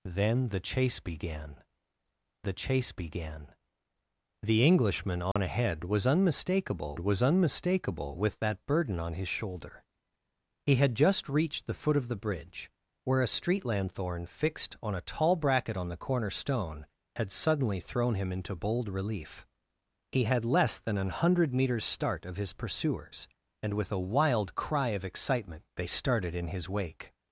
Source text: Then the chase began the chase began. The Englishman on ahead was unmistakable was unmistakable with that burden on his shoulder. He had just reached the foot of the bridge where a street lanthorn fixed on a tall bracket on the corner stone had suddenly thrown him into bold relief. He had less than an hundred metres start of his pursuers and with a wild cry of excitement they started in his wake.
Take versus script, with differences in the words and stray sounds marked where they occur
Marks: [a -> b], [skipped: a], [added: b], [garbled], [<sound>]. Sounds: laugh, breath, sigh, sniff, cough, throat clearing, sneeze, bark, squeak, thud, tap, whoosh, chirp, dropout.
Then the chase began the chase began. The Englishman on [dropout] ahead was unmistakable was unmistakable with that burden on his shoulder. He had just reached the foot of the bridge where a street lanthorn fixed on a tall bracket on the corner stone had suddenly thrown him into bold relief. He had less than an hundred metres start of his pursuers and with a wild cry of excitement they started in his wake.